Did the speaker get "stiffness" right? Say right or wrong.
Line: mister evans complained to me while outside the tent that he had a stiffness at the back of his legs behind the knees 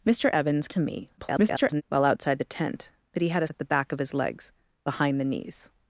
wrong